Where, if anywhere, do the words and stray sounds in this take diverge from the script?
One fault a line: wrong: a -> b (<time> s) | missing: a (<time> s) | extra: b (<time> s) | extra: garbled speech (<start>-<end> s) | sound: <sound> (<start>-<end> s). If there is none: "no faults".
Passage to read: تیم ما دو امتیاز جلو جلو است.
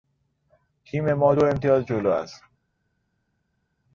missing: جلو (2.1 s)